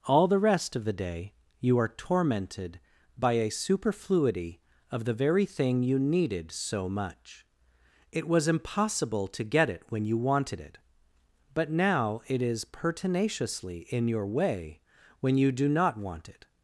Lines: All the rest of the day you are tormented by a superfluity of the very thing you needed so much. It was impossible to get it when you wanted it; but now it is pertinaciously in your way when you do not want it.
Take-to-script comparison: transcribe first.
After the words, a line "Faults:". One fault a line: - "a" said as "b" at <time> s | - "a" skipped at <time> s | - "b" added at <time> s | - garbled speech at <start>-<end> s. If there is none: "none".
All the rest of the day you are tormented by a superfluity of the very thing you needed so much. It was impossible to get it when you wanted it; but now it is pertinaciously in your way when you do not want it.
Faults:
none